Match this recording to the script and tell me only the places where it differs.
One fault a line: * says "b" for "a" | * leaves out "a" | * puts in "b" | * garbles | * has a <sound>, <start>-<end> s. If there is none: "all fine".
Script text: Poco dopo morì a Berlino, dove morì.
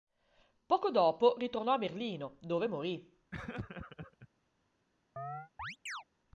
* says "ritornò" for "morì"
* has a laugh, 3.3-4.3 s
* has a chirp, 5.2-6.0 s